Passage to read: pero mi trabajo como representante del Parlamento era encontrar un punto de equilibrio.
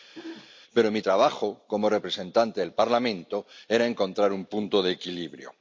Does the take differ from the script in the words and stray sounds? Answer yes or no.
yes